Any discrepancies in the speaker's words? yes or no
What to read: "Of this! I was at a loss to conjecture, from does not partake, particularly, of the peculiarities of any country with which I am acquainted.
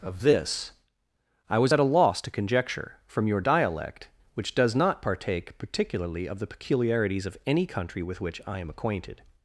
yes